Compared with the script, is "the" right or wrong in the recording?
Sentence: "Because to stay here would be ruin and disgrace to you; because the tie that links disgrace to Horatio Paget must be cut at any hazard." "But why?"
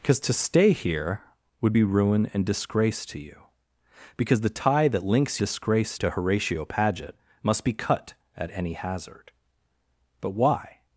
right